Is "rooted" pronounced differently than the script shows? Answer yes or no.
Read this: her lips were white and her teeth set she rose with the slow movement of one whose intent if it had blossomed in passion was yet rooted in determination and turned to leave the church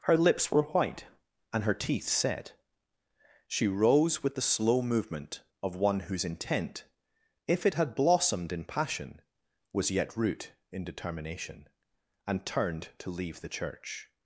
yes